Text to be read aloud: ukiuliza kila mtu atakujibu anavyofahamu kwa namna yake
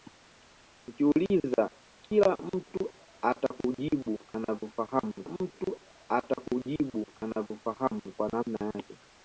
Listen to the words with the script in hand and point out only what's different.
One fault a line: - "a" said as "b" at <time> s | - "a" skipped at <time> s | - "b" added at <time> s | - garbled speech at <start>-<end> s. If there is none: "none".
- "mtu atakujibu anavyofahamu" added at 5.3 s